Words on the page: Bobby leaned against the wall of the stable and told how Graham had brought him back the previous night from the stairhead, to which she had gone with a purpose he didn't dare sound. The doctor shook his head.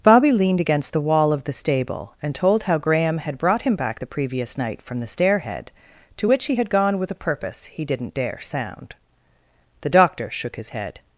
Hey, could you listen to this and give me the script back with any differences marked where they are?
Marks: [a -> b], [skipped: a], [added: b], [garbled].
Bobby leaned against the wall of the stable and told how Graham had brought him back the previous night from the stairhead, to which [she -> he] had gone with a purpose he didn't dare sound. The doctor shook his head.